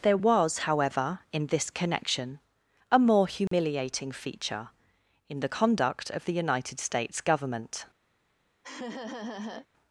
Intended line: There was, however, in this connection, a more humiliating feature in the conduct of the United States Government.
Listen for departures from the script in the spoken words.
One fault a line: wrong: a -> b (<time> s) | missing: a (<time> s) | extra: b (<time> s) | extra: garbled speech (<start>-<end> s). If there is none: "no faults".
no faults